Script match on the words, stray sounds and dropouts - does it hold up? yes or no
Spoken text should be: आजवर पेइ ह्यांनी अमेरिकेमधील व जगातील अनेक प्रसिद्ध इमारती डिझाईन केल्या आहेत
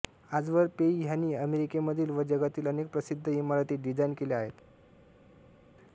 yes